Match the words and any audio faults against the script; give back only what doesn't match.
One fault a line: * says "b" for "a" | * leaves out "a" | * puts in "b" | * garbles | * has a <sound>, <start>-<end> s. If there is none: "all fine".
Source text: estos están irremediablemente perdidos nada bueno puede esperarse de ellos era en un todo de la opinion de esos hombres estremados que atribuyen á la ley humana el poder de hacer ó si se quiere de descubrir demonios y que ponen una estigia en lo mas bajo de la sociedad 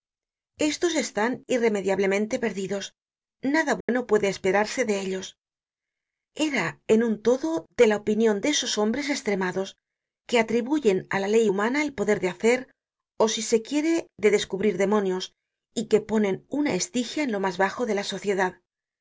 * has a dropout, 3.8-3.9 s